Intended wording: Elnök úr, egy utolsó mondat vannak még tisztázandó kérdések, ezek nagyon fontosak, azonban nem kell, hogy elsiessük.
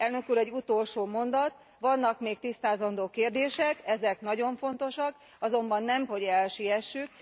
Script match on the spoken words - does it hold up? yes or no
no